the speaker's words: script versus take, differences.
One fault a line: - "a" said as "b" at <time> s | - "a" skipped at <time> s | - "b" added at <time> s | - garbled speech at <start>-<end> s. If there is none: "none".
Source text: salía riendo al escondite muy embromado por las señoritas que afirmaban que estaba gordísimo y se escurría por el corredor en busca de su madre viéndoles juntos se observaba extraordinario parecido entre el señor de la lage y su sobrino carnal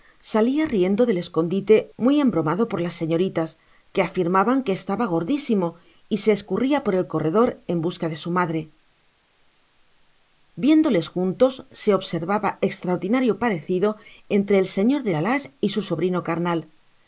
- "al" said as "del" at 1.1 s